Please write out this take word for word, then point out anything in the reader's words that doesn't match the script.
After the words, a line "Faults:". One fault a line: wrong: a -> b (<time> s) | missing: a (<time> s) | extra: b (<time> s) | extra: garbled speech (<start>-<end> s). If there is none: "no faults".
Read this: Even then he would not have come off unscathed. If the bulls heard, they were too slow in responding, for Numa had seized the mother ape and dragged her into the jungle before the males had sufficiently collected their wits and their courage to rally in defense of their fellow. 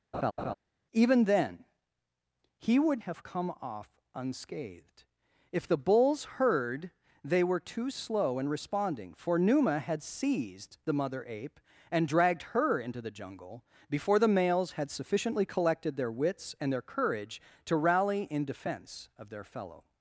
Even then he would have come off unscathed. If the bulls heard, they were too slow in responding, for Numa had seized the mother ape and dragged her into the jungle before the males had sufficiently collected their wits and their courage to rally in defense of their fellow.
Faults:
missing: not (3.0 s)